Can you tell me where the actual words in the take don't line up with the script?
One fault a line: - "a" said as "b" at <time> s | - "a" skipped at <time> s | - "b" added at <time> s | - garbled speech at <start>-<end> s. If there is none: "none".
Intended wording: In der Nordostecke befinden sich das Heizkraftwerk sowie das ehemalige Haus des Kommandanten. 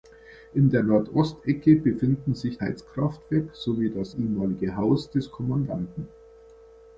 - "das" skipped at 2.6 s